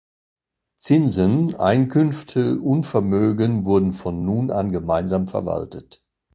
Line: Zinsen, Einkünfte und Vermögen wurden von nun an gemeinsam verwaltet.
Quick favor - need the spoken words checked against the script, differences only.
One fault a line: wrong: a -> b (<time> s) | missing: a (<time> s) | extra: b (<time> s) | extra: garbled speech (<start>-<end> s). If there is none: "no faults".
no faults